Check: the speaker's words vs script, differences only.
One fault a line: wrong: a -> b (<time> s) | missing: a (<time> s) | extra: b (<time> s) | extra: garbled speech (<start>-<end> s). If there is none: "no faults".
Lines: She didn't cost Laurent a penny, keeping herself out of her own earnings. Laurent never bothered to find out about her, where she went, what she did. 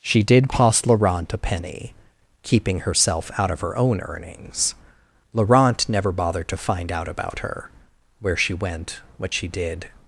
wrong: didn't -> did (0.2 s)